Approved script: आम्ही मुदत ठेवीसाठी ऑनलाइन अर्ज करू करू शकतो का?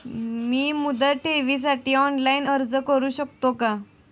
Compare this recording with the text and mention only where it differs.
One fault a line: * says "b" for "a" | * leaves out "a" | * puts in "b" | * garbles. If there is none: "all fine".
* says "मी" for "आम्ही"
* leaves out "करू"